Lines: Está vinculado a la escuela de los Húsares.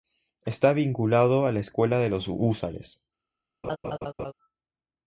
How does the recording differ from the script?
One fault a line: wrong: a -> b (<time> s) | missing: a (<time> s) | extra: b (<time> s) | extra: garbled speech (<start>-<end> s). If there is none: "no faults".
no faults